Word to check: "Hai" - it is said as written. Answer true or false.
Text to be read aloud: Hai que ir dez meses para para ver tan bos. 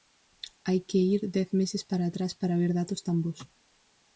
true